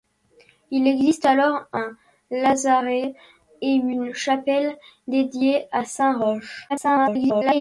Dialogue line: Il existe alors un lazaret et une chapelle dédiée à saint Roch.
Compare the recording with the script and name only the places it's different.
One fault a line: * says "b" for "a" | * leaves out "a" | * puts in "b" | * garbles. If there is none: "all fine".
* garbles